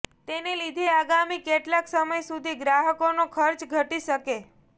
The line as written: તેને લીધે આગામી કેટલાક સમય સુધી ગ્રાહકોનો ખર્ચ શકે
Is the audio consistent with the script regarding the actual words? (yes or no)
no